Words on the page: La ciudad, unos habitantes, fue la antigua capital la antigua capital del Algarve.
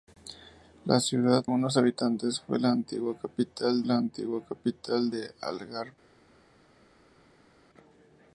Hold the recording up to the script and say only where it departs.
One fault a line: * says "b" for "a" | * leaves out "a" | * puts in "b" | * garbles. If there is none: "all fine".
all fine